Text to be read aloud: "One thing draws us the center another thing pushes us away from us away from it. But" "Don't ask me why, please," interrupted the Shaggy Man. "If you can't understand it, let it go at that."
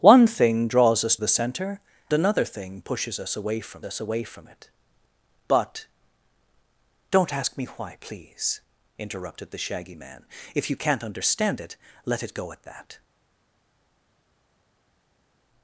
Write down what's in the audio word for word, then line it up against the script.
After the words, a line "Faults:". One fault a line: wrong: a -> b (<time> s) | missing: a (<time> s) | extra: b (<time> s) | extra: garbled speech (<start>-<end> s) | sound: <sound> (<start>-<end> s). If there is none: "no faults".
"One thing draws us the center another thing pushes us away from us away from it. But" "Don't ask me why, please," interrupted the Shaggy Man. "If you can't understand it, let it go at that."
Faults:
no faults